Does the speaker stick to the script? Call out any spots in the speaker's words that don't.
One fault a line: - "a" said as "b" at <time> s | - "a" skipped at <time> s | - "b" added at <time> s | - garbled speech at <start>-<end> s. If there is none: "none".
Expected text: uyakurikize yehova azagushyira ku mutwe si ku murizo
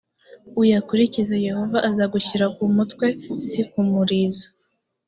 none